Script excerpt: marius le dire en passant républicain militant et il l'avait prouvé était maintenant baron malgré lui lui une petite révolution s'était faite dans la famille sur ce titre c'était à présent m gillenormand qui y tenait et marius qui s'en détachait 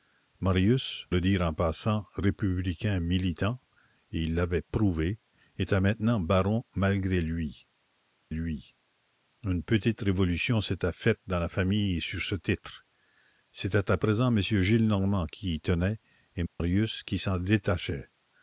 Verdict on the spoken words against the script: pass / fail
pass